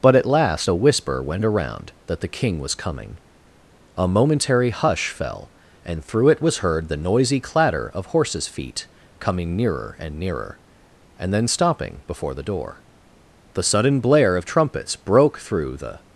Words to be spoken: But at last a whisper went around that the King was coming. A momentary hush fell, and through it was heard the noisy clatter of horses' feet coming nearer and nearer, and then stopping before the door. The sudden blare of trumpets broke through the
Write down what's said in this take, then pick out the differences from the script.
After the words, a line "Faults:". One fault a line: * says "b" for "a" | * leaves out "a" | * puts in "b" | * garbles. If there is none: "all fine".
But at last a whisper went around that the King was coming. A momentary hush fell, and through it was heard the noisy clatter of horses' feet coming nearer and nearer, and then stopping before the door. The sudden blare of trumpets broke through the
Faults:
all fine